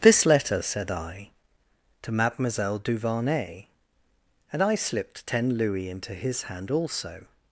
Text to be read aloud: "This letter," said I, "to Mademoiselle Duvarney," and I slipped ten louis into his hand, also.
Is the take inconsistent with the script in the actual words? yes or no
no